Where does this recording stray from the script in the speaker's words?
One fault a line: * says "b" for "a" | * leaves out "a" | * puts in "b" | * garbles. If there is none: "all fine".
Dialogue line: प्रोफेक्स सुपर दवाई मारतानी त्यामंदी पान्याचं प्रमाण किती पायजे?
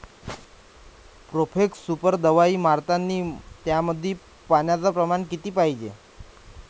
all fine